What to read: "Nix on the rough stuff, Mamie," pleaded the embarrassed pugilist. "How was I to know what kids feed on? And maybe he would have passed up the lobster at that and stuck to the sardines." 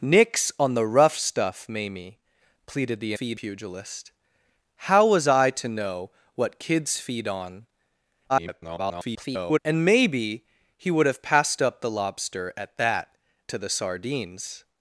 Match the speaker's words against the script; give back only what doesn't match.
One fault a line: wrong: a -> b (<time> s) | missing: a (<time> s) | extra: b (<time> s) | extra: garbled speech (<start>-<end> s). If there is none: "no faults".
wrong: embarrassed -> feed (3.1 s)
extra: garbled speech (8.3-9.6 s)
missing: and stuck (13.2 s)